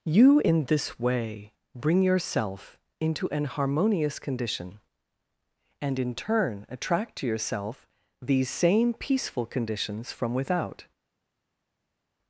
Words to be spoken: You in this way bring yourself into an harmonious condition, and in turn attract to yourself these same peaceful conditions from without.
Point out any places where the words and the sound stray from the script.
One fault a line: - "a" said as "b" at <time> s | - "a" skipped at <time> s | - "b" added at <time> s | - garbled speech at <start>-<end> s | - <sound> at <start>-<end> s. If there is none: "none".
none